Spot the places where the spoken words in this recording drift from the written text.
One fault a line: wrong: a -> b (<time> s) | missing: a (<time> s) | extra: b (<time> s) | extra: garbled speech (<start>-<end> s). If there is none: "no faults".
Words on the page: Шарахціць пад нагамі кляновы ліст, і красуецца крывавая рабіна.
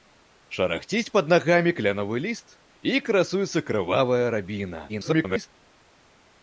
extra: garbled speech (4.9-5.5 s)